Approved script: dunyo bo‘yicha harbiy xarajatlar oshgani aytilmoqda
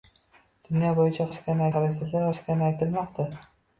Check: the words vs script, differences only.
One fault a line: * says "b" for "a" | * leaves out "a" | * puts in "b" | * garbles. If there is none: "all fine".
* says "oshgani" for "harbiy"